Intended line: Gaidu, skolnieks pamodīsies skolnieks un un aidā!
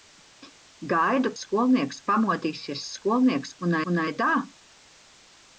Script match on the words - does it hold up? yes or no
yes